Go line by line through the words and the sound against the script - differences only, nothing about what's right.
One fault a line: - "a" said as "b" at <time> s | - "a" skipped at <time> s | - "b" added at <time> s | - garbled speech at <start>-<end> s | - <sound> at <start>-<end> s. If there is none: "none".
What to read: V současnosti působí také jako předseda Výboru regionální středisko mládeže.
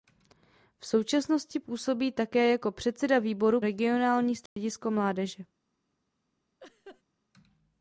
- dropout at 4.5-4.6 s
- laugh at 6.6-7.0 s